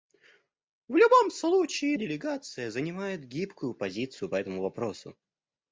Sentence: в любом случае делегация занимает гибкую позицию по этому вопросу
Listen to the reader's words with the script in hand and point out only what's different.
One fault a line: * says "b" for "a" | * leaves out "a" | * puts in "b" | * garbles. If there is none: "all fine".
all fine